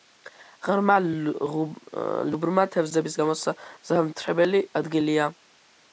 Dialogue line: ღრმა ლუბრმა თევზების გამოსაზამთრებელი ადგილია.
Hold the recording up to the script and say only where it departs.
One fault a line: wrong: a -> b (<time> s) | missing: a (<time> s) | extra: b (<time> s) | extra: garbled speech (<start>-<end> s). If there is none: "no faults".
no faults